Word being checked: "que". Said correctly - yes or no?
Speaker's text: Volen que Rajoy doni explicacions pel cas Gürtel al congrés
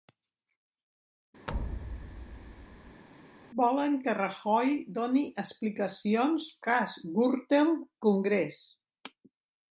yes